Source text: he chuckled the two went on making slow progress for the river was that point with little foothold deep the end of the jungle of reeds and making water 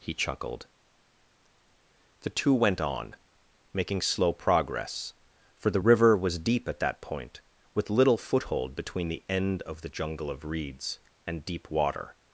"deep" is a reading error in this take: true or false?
true